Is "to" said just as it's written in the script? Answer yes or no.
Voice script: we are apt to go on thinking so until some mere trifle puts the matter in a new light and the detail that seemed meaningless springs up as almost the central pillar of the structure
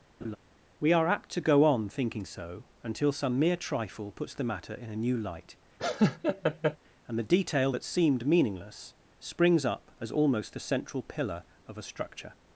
yes